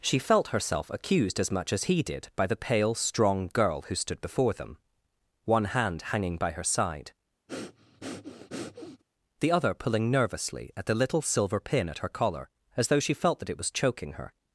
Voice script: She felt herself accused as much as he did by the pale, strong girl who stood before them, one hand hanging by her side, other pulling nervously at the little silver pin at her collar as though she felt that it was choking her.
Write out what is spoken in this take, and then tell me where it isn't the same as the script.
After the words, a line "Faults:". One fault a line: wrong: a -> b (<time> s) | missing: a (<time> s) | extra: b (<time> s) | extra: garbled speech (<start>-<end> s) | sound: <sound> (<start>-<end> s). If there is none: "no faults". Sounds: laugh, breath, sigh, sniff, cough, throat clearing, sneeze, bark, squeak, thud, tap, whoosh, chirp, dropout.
She felt herself accused as much as he did by the pale, strong girl who stood before them, one hand hanging by her side, the other pulling nervously at the little silver pin at her collar as though she felt that it was choking her.
Faults:
sound: breath (7.5-9.0 s)
extra: the (9.4 s)